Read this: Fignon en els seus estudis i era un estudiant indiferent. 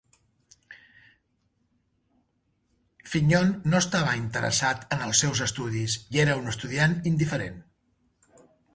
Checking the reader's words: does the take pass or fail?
fail